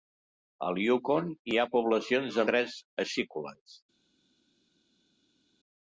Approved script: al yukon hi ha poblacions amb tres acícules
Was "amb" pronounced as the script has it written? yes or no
no